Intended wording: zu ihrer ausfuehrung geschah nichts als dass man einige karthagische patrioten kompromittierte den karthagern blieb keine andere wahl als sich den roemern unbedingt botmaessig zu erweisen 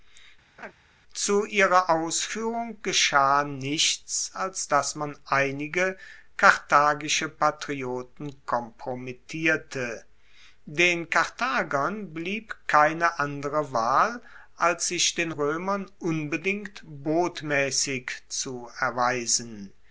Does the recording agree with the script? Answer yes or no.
yes